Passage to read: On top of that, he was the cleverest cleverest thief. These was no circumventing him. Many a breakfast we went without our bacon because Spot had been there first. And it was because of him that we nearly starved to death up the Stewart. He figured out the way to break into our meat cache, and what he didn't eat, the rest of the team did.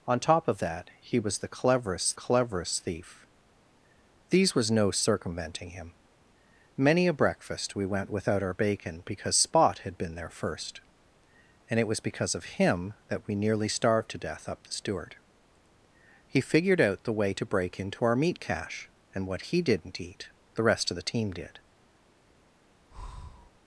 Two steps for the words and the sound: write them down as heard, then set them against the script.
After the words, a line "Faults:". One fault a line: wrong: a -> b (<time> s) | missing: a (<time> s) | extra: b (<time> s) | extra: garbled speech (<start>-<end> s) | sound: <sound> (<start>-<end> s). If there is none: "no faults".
On top of that, he was the cleverest cleverest thief. These was no circumventing him. Many a breakfast we went without our bacon because Spot had been there first. And it was because of him that we nearly starved to death up the Stewart. He figured out the way to break into our meat cache, and what he didn't eat, the rest of the team did.
Faults:
sound: breath (22.9-23.5 s)